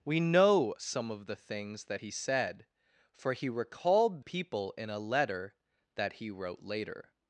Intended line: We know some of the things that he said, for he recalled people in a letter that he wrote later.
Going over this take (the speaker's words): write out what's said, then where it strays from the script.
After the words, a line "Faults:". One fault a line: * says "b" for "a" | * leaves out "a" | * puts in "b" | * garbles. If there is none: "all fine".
We know some of the things that he said, for he recalled people in a letter that he wrote later.
Faults:
all fine